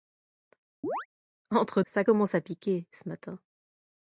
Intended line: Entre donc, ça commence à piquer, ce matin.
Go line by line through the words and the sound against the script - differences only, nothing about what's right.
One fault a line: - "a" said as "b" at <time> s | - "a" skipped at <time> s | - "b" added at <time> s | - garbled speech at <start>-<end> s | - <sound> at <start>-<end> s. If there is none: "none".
- chirp at 0.8-1.1 s
- "donc" skipped at 1.8 s